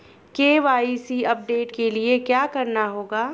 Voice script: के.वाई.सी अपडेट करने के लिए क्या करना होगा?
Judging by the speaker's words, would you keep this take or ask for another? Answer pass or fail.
fail